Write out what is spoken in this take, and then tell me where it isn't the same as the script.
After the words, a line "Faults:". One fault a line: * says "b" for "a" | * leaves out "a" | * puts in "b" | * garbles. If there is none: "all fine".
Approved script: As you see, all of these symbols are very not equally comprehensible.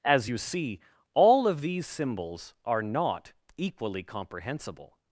As you see, all of these symbols are not equally comprehensible.
Faults:
* leaves out "very"